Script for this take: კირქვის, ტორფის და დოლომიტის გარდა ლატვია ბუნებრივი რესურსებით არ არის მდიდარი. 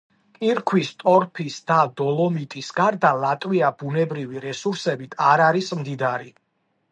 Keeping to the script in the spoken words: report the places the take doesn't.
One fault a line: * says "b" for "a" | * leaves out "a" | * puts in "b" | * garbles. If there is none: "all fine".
all fine